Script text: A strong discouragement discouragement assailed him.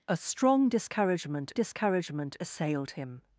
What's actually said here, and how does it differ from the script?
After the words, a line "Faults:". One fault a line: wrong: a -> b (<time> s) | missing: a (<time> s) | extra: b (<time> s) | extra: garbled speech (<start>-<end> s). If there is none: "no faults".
A strong discouragement discouragement assailed him.
Faults:
no faults